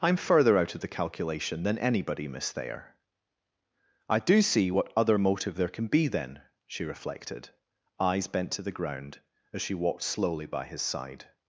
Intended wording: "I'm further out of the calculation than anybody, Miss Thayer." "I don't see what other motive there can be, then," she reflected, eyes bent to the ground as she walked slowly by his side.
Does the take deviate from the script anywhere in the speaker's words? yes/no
yes